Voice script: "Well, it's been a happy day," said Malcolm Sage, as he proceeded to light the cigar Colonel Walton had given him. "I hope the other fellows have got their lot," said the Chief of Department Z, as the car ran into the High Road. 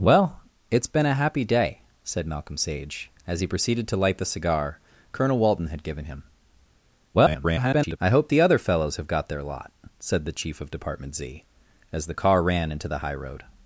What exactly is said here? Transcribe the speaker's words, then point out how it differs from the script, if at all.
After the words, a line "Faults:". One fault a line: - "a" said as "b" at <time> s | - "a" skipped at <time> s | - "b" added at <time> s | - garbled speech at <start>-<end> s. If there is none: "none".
"Well, it's been a happy day," said Malcolm Sage, as he proceeded to light the cigar Colonel Walton had given him. [garbled] "I hope the other fellows have got their lot," said the Chief of Department Z, as the car ran into the High Road.
Faults:
- garbled speech at 7.1-8.0 s